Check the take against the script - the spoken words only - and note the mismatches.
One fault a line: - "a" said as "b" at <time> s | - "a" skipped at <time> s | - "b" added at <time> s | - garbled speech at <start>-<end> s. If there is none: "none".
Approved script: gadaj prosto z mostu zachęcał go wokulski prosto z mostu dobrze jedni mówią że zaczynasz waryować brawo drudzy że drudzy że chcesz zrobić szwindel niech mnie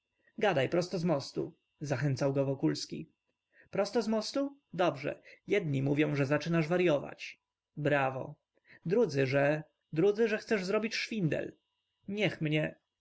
none